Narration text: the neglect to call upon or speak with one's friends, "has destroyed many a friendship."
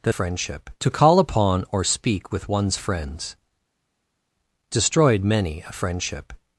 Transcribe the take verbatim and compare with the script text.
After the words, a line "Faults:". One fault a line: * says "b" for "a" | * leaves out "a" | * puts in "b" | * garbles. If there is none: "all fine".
the friendship to call upon or speak with one's friends, "destroyed many a friendship."
Faults:
* says "friendship" for "neglect"
* leaves out "has"